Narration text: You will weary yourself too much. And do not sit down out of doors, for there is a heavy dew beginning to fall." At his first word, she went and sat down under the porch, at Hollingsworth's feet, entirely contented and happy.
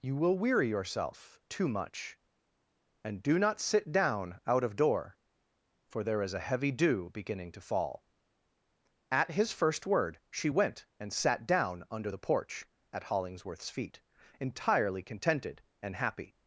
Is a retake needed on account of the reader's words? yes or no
yes